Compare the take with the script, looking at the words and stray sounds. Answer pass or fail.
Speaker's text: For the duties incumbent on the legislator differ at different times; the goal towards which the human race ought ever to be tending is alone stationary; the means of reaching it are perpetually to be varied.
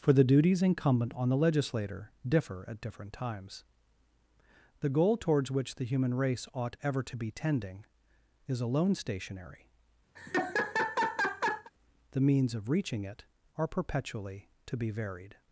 fail